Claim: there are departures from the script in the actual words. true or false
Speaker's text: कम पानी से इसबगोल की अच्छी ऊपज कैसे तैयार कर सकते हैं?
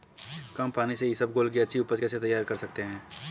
false